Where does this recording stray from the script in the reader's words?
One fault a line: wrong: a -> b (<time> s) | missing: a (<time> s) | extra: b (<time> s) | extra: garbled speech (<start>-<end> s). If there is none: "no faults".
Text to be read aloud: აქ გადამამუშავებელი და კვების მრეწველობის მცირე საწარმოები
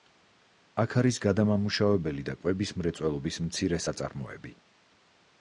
extra: არის (1.0 s)